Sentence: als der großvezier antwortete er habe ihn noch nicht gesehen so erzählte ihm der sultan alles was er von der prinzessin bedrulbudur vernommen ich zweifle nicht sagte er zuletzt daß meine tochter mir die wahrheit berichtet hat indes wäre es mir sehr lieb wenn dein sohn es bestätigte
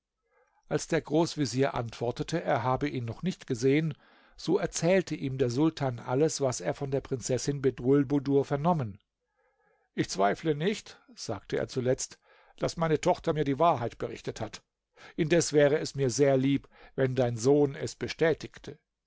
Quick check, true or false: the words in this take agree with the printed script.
true